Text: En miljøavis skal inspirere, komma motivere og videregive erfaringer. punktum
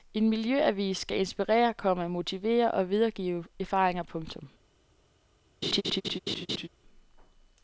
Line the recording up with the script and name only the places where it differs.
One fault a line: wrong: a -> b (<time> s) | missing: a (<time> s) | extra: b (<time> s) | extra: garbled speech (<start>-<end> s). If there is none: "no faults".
no faults